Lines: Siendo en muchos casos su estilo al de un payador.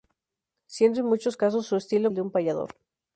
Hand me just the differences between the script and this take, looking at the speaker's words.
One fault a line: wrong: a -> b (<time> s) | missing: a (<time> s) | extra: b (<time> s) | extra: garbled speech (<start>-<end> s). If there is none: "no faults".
no faults